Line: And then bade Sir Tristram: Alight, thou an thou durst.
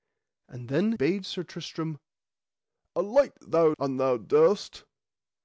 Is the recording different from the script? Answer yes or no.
no